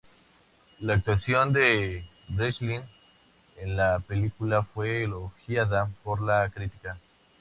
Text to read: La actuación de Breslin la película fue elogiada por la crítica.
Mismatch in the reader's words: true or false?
true